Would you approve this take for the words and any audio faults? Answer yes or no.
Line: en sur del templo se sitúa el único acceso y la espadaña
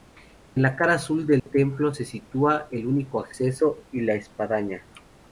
no